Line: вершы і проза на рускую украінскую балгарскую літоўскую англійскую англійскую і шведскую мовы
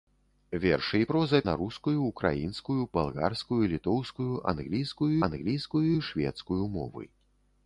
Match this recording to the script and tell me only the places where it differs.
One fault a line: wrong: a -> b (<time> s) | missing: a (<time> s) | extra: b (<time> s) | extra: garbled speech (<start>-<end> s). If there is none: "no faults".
no faults